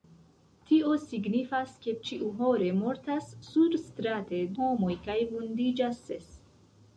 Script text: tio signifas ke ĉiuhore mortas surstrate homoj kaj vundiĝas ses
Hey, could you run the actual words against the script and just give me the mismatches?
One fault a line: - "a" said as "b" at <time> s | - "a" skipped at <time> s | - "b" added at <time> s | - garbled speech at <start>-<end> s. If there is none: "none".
none